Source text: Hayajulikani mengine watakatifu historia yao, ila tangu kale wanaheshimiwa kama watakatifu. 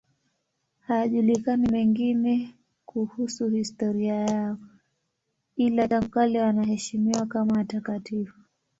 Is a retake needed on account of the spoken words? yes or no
yes